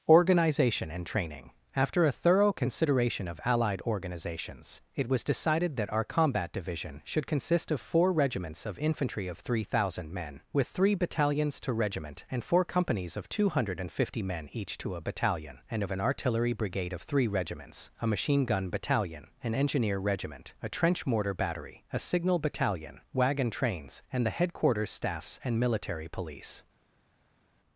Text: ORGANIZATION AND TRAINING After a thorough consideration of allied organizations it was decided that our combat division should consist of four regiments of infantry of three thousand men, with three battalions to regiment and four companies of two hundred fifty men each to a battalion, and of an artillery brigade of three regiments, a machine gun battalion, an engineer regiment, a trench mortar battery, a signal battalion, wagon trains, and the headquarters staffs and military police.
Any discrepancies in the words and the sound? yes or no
no